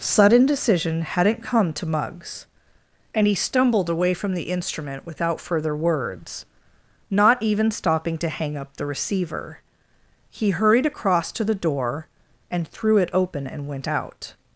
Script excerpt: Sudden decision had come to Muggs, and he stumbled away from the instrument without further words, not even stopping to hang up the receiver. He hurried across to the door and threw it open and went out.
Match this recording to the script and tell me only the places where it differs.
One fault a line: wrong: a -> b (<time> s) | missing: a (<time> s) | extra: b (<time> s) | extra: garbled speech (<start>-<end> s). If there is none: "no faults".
wrong: had -> hadn't (1.0 s)